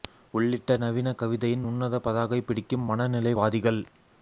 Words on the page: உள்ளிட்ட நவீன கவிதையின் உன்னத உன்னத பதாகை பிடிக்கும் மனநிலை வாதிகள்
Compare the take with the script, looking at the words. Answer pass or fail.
fail